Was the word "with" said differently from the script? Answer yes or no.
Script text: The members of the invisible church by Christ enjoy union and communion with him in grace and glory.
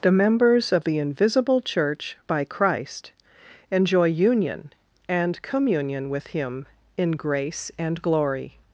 no